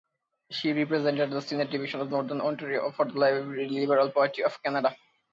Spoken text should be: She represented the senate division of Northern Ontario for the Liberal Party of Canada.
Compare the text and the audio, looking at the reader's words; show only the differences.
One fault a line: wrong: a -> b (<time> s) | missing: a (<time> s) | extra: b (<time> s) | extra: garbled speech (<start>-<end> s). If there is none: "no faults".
no faults